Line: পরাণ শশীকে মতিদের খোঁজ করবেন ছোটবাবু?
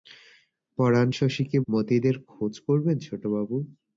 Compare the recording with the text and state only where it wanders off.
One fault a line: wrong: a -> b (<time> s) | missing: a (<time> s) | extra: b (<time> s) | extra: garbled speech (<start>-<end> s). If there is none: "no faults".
no faults